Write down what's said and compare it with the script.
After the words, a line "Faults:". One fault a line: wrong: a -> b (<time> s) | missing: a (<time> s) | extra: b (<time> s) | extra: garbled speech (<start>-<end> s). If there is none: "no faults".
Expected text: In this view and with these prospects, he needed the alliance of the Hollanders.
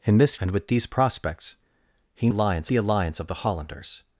In this and with these prospects, he alliance the alliance of the Hollanders.
Faults:
missing: view (0.3 s)
wrong: needed -> alliance (2.3 s)